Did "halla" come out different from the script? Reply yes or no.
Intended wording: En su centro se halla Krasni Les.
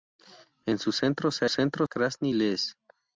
yes